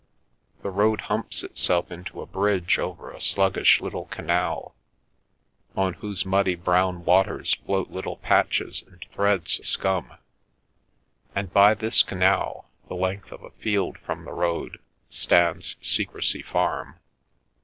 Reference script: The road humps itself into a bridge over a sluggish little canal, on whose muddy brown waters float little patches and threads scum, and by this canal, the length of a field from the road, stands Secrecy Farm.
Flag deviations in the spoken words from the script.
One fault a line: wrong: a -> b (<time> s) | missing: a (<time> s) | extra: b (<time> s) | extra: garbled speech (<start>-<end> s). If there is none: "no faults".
no faults